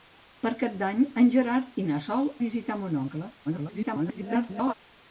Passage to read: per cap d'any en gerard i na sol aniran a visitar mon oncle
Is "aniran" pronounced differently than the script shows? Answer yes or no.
yes